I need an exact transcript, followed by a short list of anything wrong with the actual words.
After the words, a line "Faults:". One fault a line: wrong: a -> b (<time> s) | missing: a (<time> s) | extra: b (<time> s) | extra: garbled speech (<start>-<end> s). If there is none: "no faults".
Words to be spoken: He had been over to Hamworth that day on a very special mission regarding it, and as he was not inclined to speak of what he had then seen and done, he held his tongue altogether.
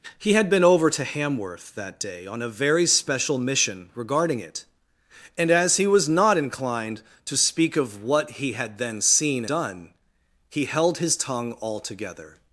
He had been over to Hamworth that day on a very special mission regarding it, and as he was not inclined to speak of what he had then seen done, he held his tongue altogether.
Faults:
missing: and (9.4 s)